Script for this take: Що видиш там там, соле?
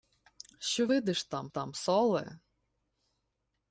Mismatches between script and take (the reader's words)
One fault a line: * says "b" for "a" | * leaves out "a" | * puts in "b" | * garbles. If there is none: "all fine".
all fine